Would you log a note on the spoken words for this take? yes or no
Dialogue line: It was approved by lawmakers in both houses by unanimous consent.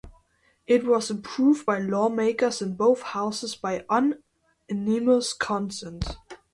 no